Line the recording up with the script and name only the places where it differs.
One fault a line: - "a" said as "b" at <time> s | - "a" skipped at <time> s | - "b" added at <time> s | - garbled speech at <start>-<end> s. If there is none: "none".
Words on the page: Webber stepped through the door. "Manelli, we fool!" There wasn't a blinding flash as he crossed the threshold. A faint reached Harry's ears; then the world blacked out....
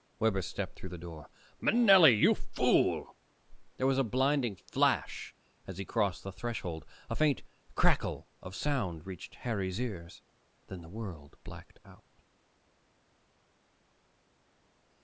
- "we" said as "you" at 2.1 s
- "wasn't" said as "was" at 3.9 s
- "crackle of sound" added at 7.8 s